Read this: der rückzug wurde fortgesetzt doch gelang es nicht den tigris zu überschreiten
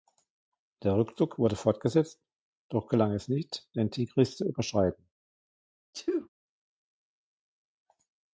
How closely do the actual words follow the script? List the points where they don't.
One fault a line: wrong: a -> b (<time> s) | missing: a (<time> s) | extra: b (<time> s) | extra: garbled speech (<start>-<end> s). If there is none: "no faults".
no faults